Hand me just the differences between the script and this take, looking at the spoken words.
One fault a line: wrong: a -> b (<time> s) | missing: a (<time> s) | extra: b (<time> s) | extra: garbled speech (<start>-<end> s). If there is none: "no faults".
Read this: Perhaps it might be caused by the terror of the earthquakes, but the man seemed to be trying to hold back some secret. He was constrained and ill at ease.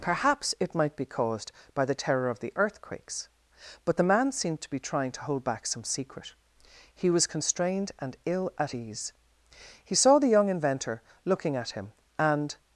extra: He saw the young inventor looking at him and (9.8 s)